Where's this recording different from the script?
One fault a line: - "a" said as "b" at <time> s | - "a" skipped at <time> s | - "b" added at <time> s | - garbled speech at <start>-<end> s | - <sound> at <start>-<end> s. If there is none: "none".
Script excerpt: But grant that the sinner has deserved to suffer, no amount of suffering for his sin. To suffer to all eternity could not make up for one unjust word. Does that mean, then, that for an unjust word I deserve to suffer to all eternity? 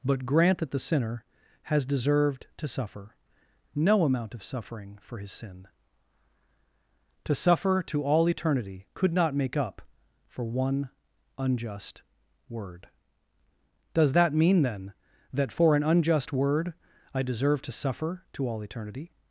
none